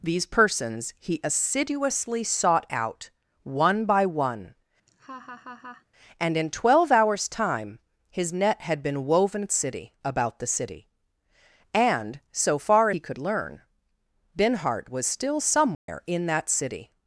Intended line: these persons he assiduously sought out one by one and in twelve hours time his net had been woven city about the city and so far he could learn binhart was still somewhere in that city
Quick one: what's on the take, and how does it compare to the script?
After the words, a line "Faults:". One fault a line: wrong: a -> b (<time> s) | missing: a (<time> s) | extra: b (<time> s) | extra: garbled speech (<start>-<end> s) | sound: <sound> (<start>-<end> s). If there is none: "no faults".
these persons he assiduously sought out one by one and in twelve hours time his net had been woven city about the city and so far he could learn binhart was still somewhere in that city
Faults:
sound: laugh (4.9-5.9 s)
sound: dropout (15.7-15.9 s)